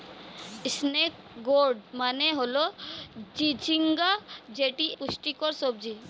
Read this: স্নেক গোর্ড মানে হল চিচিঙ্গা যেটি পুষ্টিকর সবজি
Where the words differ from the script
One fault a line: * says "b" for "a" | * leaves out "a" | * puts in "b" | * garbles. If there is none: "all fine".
all fine